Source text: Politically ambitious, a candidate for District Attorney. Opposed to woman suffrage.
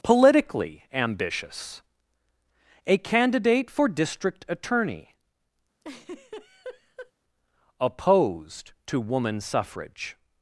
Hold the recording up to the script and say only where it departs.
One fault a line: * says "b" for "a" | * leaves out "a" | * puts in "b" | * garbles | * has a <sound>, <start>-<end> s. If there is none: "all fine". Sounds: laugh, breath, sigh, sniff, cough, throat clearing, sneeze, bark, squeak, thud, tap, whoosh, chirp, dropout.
* has a laugh, 5.8-7.1 s